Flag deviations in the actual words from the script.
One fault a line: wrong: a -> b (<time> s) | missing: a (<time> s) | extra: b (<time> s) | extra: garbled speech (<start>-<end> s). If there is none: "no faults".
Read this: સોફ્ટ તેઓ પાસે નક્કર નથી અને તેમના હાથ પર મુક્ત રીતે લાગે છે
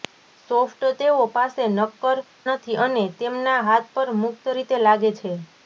no faults